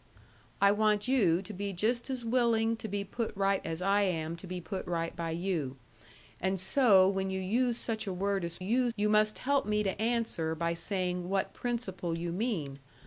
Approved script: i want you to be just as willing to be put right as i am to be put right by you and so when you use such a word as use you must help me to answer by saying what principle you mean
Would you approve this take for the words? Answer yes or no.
yes